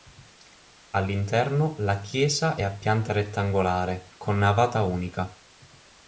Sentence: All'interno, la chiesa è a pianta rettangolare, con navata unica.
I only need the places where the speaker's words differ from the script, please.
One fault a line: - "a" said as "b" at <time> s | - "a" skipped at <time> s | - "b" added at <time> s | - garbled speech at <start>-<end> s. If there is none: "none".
none